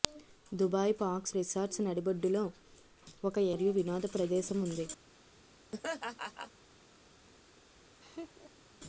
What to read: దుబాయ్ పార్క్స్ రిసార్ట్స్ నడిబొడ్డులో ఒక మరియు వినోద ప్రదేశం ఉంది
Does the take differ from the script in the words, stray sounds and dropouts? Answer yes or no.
yes